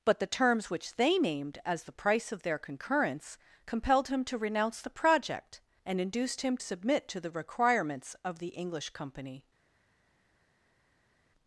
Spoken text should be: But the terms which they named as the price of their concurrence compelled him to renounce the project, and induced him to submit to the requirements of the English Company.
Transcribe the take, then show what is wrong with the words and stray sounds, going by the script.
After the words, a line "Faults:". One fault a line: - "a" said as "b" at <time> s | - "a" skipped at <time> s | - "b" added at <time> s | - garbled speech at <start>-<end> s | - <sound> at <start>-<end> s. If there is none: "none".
But the terms which they named as the price of their concurrence compelled him to renounce the project, and induced him submit to the requirements of the English Company.
Faults:
- "to" skipped at 6.6 s